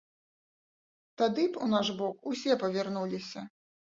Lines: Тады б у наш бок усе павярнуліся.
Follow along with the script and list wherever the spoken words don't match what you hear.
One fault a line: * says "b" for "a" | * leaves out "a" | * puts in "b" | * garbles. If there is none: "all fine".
all fine